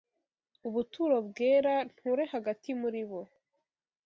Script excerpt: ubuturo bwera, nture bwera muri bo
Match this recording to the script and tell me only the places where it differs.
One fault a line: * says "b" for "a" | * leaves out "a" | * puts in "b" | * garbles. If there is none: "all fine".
* says "hagati" for "bwera"